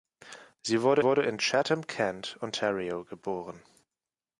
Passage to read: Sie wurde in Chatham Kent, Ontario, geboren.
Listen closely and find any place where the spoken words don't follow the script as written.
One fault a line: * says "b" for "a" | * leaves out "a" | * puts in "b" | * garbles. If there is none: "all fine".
* puts in "wurde"